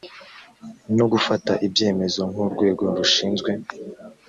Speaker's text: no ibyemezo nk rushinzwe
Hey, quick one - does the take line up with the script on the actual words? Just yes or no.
no